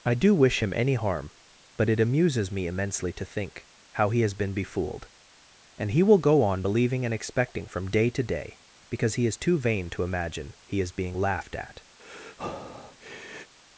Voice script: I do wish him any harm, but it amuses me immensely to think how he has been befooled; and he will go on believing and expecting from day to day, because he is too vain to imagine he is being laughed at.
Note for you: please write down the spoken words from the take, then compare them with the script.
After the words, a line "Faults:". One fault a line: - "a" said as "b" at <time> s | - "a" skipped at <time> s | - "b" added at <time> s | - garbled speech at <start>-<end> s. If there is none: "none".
I do wish him any harm, but it amuses me immensely to think how he has been befooled; and he will go on believing and expecting from day to day, because he is too vain to imagine he is being laughed at.
Faults:
none